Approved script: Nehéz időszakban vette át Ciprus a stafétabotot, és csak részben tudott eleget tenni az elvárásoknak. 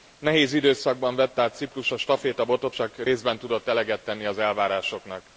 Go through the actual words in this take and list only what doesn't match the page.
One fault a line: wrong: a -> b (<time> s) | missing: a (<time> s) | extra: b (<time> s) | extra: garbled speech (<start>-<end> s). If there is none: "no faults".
missing: és (2.8 s)